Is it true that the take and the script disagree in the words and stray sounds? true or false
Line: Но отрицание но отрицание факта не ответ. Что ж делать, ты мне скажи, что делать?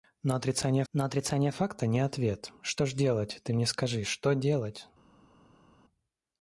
false